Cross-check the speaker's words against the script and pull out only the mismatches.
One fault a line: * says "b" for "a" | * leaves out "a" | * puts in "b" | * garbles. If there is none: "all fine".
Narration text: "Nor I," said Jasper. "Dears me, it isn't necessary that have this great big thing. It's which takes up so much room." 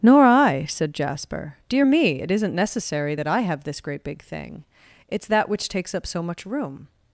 * says "Dear" for "Dears"
* puts in "I"
* puts in "that"